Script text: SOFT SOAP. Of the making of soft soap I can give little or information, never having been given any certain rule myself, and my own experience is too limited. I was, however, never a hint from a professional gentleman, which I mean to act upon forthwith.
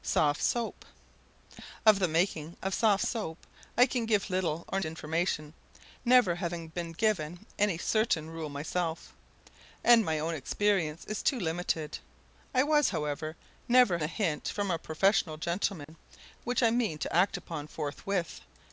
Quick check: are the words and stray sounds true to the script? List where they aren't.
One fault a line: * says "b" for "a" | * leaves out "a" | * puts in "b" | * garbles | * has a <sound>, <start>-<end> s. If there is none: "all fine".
* has a dropout, 15.8-15.9 s